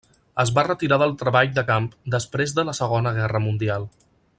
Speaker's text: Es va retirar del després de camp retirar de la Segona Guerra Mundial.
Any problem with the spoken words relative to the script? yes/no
yes